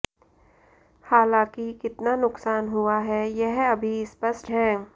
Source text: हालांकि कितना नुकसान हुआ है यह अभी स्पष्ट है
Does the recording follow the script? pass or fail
pass